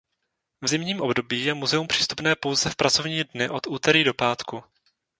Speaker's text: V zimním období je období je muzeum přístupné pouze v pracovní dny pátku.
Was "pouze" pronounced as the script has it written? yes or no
yes